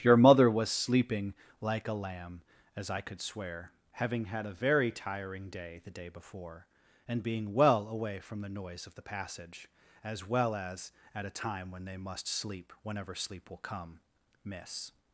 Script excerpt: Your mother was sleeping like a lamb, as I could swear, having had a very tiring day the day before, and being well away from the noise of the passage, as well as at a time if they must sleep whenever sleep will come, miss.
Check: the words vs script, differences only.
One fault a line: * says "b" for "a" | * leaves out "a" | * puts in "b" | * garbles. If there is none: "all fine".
* says "when" for "if"